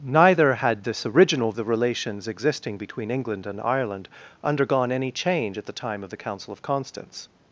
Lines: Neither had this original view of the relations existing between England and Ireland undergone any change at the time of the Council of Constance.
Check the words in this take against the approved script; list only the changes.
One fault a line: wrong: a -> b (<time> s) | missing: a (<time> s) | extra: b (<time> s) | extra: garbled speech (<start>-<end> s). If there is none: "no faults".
missing: view of (1.5 s)